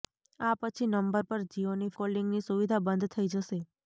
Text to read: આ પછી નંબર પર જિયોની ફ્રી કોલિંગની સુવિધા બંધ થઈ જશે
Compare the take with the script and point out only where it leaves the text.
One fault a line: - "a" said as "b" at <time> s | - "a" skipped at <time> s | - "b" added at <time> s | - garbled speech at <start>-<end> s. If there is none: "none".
- "ફ્રી" skipped at 1.9 s